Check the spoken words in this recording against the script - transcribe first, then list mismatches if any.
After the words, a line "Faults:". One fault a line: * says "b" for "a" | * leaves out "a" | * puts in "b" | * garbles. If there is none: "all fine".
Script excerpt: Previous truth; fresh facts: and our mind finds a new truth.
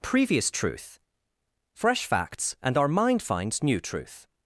Previous truth; fresh facts: and our mind finds new truth.
Faults:
* leaves out "a"